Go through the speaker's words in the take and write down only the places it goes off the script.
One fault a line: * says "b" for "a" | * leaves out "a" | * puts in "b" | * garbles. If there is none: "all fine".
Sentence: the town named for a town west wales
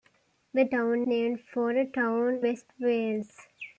all fine